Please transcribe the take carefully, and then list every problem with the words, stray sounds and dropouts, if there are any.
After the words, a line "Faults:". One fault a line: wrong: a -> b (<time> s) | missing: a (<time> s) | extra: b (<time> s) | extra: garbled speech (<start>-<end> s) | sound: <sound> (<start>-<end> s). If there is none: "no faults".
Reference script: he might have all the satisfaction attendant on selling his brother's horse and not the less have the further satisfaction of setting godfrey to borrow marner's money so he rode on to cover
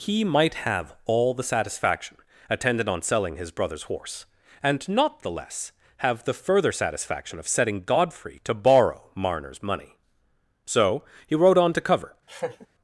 he might have all the satisfaction attendant on selling his brother's horse and not the less have the further satisfaction of setting godfrey to borrow marner's money so he rode on to cover
Faults:
sound: laugh (12.3-12.7 s)